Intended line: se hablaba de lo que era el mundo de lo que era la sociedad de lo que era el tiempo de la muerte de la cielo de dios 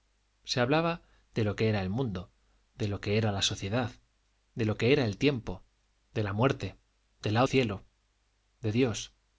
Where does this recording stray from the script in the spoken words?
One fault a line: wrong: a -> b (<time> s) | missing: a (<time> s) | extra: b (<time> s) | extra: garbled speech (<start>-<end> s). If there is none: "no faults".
no faults